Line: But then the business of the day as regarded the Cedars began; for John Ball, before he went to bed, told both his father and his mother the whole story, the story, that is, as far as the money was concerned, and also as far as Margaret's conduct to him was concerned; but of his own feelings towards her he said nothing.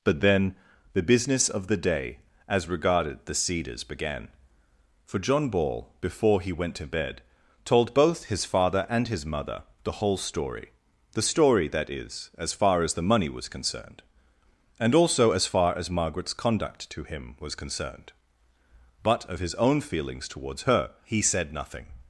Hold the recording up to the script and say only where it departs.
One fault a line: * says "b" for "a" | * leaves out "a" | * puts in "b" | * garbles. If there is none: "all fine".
all fine